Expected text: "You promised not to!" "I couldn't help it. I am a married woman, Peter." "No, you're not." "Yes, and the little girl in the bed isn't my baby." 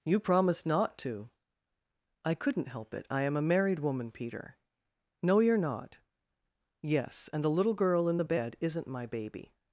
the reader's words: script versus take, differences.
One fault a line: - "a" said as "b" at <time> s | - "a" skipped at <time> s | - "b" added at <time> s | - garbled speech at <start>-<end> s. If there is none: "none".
none